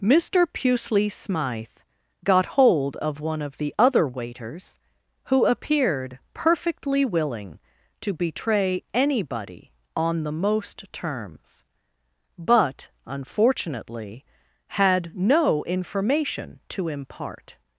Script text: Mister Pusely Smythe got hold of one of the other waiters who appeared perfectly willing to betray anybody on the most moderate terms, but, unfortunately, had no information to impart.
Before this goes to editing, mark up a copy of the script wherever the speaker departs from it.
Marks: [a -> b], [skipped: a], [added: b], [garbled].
Mister Pusely Smythe got hold of one of the other waiters who appeared perfectly willing to betray anybody on the most [skipped: moderate] terms, but, unfortunately, had no information to impart.